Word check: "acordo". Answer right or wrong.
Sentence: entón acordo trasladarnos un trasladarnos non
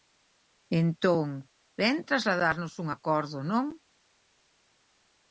wrong